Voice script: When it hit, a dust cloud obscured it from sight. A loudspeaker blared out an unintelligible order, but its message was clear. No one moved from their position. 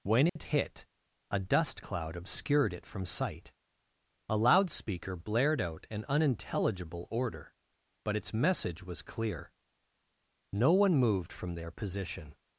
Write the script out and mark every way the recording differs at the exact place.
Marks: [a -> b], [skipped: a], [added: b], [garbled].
When it hit, a dust cloud obscured it from sight. A loudspeaker blared out an unintelligible order, but its message was clear. No one moved from their position.